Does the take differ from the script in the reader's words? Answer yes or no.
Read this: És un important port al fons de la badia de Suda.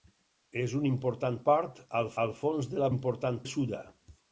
yes